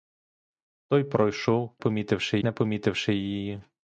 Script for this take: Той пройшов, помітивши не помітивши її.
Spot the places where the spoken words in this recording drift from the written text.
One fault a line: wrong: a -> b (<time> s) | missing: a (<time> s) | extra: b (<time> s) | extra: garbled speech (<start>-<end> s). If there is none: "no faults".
no faults